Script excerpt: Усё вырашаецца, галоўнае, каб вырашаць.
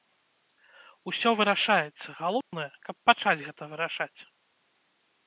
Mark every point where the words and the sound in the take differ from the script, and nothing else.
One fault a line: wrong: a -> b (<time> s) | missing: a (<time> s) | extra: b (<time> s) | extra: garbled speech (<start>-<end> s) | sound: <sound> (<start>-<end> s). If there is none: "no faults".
sound: dropout (2.4-2.5 s)
extra: пачаць гэта (3.1 s)